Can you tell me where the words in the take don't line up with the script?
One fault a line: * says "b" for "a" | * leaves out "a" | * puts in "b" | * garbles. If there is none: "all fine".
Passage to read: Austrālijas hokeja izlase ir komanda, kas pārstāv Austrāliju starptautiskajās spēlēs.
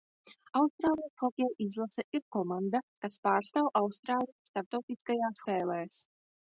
all fine